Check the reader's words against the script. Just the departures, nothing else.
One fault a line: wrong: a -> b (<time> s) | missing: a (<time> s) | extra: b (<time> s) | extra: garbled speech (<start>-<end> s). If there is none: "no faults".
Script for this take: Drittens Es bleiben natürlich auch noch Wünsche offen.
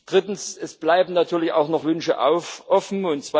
no faults